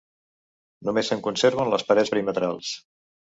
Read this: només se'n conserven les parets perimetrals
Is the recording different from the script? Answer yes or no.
no